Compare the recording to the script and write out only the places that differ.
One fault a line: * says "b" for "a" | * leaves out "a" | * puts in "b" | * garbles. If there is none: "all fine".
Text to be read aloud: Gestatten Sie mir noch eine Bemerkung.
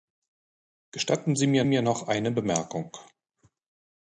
* puts in "mir"